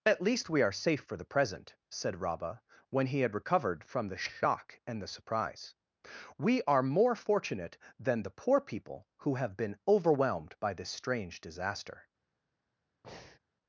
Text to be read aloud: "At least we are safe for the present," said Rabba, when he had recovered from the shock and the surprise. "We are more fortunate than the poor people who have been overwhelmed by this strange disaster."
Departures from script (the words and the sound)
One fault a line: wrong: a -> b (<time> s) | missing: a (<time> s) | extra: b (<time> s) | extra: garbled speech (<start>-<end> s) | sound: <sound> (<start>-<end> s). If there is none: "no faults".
sound: breath (13.0-13.4 s)